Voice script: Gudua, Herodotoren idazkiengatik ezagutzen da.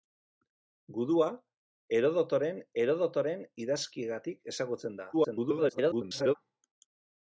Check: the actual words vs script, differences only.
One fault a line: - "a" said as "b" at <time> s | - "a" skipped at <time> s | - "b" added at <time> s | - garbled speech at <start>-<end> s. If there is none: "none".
- "Herodotoren" added at 2.8 s
- garbled speech at 5.1-6.4 s